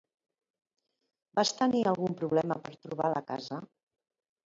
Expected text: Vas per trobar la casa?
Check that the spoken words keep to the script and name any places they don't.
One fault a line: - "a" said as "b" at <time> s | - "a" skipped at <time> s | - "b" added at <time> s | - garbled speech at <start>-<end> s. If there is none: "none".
- "tenir algun problema" added at 1.6 s